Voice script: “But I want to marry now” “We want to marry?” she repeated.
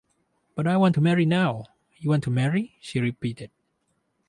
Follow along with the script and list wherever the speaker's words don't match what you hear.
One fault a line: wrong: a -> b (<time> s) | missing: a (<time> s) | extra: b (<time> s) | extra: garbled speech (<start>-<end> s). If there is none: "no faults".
wrong: We -> You (2.0 s)